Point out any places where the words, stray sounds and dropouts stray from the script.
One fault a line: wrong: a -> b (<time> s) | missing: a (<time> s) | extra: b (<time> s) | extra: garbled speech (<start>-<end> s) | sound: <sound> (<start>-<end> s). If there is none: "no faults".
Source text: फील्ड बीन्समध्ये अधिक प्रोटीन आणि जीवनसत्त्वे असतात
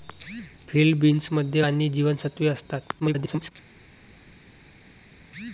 missing: अधिक प्रोटीन (1.6 s)
extra: garbled speech (3.0-3.5 s)